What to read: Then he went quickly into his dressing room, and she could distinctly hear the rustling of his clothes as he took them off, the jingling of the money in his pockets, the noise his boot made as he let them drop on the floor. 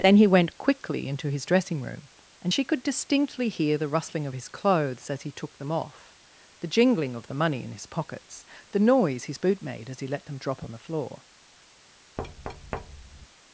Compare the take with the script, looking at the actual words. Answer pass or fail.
pass